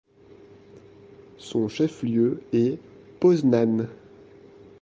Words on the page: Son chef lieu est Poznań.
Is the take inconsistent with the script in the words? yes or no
no